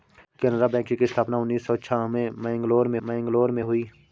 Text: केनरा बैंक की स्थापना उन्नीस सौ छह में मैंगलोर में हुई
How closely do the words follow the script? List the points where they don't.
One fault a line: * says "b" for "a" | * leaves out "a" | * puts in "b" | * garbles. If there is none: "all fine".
* puts in "मैंगलोर में"